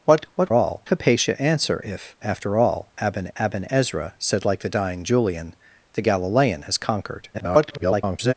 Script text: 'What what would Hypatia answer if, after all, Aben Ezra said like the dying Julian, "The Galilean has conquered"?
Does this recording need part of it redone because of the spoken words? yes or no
yes